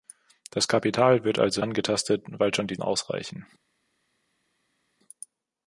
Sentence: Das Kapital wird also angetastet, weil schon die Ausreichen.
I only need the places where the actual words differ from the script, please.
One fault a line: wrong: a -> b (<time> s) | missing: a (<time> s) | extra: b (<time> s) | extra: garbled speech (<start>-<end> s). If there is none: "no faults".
no faults